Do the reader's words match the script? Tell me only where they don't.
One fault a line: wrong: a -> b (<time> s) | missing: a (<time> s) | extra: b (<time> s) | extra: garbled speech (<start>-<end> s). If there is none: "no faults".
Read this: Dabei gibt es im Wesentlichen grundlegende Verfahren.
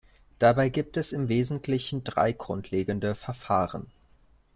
extra: drei (2.0 s)